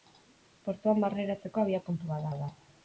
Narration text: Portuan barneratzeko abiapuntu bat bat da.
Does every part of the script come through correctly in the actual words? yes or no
yes